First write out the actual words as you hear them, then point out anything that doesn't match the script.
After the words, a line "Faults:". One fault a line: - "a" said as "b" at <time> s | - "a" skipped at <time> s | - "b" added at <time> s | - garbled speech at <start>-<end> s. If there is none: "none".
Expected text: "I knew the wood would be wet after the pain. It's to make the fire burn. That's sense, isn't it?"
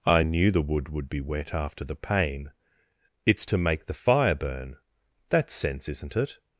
"I knew the wood would be wet after the pain. It's to make the fire burn. That's sense, isn't it?"
Faults:
none